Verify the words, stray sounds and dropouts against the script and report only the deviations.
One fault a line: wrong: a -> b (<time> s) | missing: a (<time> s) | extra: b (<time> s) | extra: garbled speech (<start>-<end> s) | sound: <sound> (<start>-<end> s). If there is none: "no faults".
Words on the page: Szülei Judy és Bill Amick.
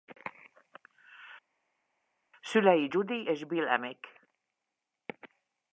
no faults